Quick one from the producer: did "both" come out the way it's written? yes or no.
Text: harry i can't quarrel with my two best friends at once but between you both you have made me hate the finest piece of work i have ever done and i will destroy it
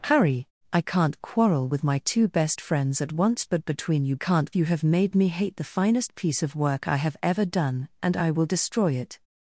no